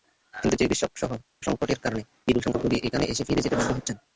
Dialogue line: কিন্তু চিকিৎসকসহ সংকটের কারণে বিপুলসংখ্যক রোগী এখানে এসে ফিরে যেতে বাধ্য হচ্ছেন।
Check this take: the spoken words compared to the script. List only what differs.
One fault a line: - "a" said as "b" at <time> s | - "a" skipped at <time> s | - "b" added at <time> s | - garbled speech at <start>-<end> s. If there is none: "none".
none